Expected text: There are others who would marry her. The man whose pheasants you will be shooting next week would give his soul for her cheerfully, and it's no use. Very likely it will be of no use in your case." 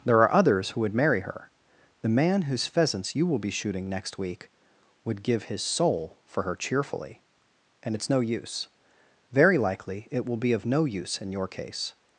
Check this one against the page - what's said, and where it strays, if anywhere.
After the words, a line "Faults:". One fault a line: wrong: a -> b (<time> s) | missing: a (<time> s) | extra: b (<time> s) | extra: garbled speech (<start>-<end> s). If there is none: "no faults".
There are others who would marry her. The man whose pheasants you will be shooting next week would give his soul for her cheerfully, and it's no use. Very likely it will be of no use in your case."
Faults:
no faults